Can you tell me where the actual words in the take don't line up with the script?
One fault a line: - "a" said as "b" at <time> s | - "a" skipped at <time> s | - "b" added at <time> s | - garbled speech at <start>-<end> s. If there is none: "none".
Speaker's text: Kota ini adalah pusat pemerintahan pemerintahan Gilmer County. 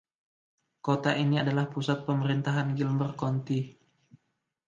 - "pemerintahan" skipped at 2.7 s